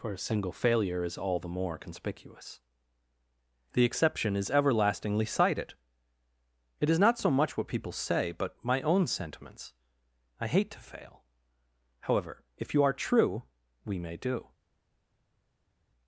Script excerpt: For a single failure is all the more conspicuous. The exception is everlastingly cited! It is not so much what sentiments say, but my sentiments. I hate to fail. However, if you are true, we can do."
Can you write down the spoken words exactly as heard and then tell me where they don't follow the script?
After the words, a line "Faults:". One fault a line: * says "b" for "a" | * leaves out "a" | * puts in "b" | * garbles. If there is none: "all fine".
For a single failure is all the more conspicuous. The exception is everlastingly cited! It is not so much what people say, but my own sentiments. I hate to fail. However, if you are true, we may do."
Faults:
* says "people" for "sentiments"
* puts in "own"
* says "may" for "can"